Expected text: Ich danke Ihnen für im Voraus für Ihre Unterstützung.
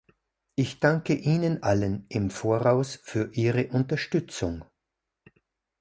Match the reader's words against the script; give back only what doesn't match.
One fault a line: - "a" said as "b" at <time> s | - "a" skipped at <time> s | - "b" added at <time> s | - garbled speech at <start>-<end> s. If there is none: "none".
- "für" said as "allen" at 1.6 s